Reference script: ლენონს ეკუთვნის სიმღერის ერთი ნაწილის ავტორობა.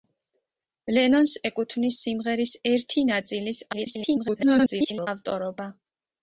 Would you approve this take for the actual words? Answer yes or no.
no